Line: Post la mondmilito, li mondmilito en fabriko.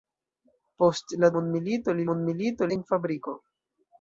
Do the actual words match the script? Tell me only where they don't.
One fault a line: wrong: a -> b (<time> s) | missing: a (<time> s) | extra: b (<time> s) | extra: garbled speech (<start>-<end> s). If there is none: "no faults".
no faults